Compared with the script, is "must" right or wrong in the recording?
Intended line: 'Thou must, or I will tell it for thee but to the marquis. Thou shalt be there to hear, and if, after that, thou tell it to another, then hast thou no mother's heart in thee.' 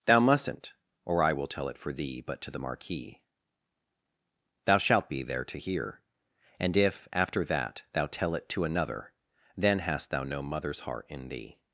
wrong